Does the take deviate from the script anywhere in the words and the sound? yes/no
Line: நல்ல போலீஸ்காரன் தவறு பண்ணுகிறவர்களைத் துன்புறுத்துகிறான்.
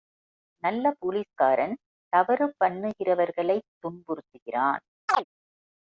yes